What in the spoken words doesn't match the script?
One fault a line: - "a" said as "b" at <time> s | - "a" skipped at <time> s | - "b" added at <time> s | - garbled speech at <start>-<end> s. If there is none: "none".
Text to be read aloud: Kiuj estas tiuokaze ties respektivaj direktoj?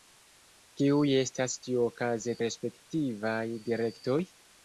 - "ties" skipped at 2.4 s